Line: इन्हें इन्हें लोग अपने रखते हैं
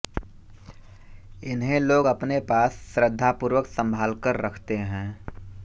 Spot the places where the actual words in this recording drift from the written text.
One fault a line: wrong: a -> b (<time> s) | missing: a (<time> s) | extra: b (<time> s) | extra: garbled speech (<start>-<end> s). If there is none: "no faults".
missing: इन्हें (1.8 s)
extra: पास श्रद्धापूर्वक संभालकर (2.5 s)